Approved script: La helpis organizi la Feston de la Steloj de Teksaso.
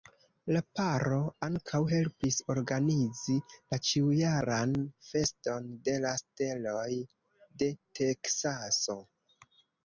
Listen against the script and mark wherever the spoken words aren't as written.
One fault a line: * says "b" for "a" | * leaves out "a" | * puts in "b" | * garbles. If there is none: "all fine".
* puts in "paro ankaŭ"
* puts in "ĉiujaran"